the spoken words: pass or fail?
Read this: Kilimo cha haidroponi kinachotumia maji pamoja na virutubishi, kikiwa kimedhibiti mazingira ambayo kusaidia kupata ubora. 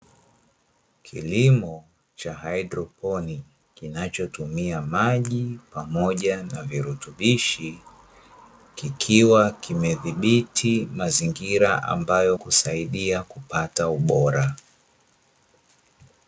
pass